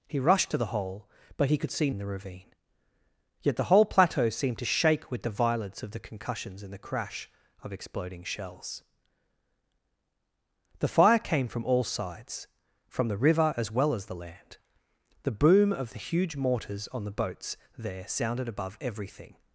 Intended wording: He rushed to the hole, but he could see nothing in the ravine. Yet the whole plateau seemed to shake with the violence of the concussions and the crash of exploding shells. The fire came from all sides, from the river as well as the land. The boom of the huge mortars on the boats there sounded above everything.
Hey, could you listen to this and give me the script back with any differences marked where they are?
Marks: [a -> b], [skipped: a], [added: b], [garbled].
He rushed to the hole, but he could see [skipped: nothing] in the ravine. Yet the whole plateau seemed to shake with the violence of the concussions and the crash of exploding shells. The fire came from all sides, from the river as well as the land. The boom of the huge mortars on the boats there sounded above everything.